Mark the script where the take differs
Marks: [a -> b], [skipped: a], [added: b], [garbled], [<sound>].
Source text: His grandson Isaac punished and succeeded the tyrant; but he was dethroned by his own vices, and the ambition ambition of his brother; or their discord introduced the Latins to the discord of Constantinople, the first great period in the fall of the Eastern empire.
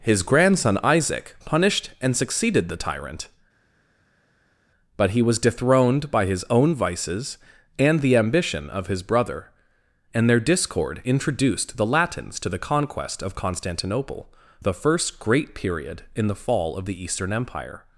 His grandson Isaac punished and succeeded the tyrant; but he was dethroned by his own vices, and the ambition [skipped: ambition] of his brother; [or -> and] their discord introduced the Latins to the [discord -> conquest] of Constantinople, the first great period in the fall of the Eastern empire.